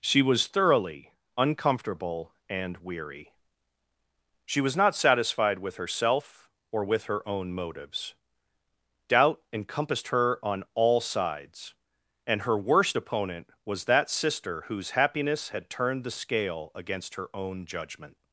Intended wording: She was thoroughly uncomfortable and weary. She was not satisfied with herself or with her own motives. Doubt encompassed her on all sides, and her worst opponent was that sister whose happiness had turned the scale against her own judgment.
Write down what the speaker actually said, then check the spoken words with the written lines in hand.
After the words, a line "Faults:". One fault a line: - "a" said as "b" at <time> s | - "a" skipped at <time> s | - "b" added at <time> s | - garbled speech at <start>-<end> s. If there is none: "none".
She was thoroughly uncomfortable and weary. She was not satisfied with herself or with her own motives. Doubt encompassed her on all sides, and her worst opponent was that sister whose happiness had turned the scale against her own judgment.
Faults:
none